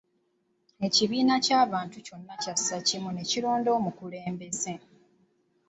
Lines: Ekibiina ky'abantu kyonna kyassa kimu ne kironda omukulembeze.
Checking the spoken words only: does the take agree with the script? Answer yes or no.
yes